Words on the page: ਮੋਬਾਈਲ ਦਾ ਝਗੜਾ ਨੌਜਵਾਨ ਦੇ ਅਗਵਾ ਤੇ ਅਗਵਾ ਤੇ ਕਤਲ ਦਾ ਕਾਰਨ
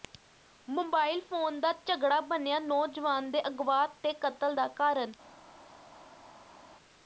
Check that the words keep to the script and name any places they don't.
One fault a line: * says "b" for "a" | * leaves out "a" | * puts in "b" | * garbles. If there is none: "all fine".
* puts in "ਫੋਨ"
* puts in "ਬਣਿਆ"
* leaves out "ਅਗਵਾ ਤੇ"